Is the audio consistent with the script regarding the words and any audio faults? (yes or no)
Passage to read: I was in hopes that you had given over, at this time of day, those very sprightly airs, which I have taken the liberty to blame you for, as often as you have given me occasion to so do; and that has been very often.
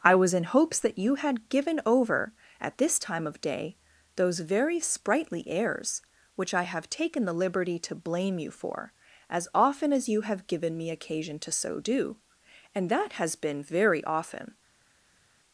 yes